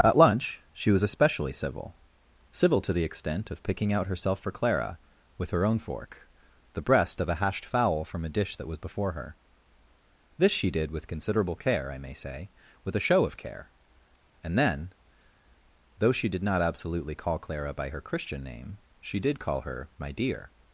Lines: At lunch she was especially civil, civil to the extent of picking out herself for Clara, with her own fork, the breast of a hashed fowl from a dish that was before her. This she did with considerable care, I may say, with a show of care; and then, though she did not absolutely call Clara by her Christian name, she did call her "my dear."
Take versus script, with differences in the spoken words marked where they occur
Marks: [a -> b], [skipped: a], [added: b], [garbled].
At lunch she was especially civil, civil to the extent of picking out herself for Clara, with her own fork, the breast of a hashed fowl from a dish that was before her. This she did with considerable care, I may say, with a show of care; and then, though she did not absolutely call Clara by her Christian name, she did call her "my dear."